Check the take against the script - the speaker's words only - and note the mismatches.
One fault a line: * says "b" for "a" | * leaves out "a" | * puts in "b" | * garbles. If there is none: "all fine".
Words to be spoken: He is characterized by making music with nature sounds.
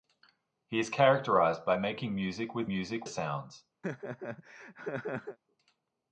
* says "music" for "nature"